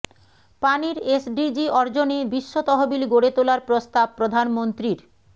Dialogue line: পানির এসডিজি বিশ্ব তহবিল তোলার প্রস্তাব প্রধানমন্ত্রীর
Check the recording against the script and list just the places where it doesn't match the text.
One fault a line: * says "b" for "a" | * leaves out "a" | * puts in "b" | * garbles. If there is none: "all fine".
* puts in "অর্জনে"
* puts in "গড়ে"